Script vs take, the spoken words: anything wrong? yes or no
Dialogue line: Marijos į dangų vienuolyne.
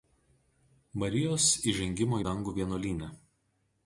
yes